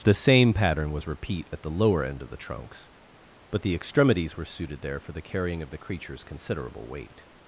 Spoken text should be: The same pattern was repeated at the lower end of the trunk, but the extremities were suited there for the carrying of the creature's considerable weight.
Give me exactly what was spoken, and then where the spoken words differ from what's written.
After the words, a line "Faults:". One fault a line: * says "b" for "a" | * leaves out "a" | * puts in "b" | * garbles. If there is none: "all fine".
The same pattern was repeat at the lower end of the trunks, but the extremities were suited there for the carrying of the creature's considerable weight.
Faults:
* says "repeat" for "repeated"
* says "trunks" for "trunk"